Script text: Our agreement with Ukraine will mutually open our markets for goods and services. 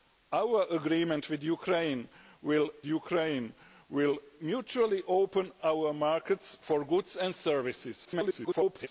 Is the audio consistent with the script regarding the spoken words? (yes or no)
no